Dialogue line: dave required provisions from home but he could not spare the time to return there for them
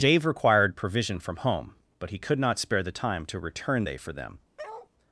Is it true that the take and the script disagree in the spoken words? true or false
true